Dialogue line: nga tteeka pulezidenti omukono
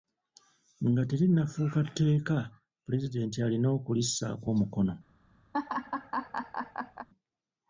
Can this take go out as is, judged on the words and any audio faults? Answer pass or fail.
fail